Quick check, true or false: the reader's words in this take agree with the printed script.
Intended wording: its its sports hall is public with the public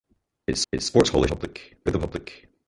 true